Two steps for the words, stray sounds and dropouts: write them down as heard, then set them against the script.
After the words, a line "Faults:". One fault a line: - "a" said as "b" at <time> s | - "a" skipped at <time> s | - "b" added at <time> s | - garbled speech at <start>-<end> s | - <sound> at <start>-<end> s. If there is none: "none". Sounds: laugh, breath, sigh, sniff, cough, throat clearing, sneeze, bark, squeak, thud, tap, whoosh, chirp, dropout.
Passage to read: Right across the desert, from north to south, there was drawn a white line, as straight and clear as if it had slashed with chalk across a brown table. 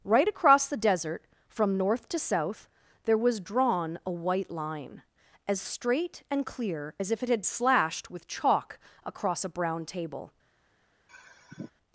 Right across the desert, from north to south, there was drawn a white line, as straight and clear as if it had slashed with chalk across a brown table.
Faults:
- sigh at 11.1-11.7 s